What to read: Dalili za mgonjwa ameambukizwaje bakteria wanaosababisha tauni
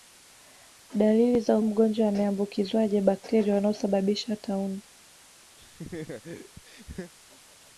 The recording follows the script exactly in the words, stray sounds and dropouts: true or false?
false